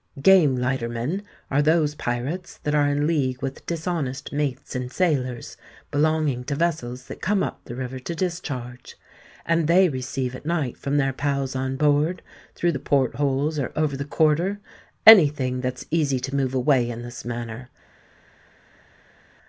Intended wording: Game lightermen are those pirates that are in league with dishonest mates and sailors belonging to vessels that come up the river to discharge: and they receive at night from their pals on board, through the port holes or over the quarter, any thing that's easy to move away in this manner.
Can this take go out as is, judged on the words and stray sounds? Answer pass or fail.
pass